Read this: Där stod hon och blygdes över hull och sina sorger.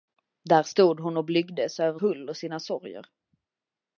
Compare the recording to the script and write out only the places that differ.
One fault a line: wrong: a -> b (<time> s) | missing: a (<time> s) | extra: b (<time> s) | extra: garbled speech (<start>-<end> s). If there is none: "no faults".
no faults